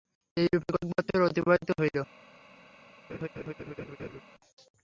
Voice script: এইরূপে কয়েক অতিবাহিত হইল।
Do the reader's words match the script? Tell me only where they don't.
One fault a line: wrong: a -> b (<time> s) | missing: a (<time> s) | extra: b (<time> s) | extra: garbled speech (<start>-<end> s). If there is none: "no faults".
extra: বৎসর (0.9 s)